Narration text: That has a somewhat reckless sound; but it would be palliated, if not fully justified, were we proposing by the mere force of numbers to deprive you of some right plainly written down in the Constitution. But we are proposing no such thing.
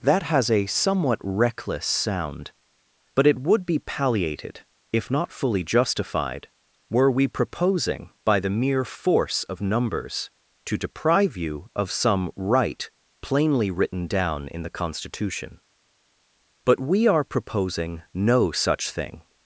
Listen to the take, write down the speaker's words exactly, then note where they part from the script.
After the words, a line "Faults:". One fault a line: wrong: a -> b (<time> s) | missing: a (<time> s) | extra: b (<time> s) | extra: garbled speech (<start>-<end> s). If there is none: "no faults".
That has a somewhat reckless sound; but it would be palliated, if not fully justified, were we proposing by the mere force of numbers to deprive you of some right plainly written down in the Constitution. But we are proposing no such thing.
Faults:
no faults